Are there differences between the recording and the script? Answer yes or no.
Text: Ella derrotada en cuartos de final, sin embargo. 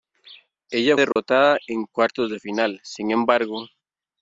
no